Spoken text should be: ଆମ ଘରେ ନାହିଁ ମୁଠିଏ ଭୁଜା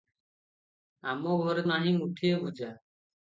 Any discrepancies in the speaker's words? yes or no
no